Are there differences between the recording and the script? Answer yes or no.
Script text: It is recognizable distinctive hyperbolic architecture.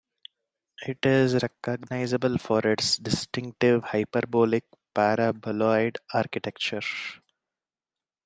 yes